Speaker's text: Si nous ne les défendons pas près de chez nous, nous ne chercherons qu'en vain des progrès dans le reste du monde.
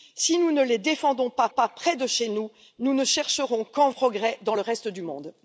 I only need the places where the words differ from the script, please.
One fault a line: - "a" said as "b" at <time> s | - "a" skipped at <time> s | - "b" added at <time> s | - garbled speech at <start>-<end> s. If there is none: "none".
- "pas" added at 1.5 s
- "vain des" skipped at 3.9 s